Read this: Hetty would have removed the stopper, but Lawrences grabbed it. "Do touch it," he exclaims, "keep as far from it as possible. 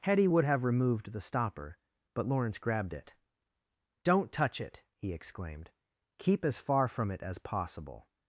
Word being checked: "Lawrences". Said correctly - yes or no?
no